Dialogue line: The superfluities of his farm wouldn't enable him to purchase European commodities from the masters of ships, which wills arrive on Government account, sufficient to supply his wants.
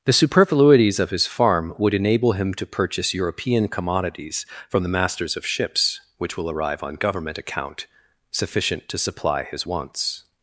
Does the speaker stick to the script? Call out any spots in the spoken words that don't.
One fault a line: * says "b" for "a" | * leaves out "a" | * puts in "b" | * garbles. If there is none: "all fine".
* says "would" for "wouldn't"
* says "will" for "wills"